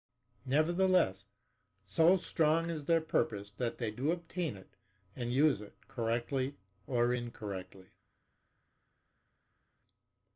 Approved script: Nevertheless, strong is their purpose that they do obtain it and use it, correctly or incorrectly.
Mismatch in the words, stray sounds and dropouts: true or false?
true